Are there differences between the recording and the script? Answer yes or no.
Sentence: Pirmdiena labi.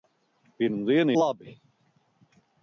no